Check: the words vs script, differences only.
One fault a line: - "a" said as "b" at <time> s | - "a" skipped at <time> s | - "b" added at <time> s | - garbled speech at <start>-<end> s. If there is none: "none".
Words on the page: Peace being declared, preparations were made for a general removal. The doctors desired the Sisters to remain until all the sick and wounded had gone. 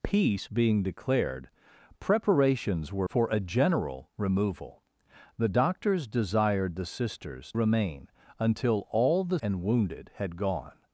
- "made" skipped at 3.1 s
- "to" skipped at 7.5 s
- "sick" skipped at 9.4 s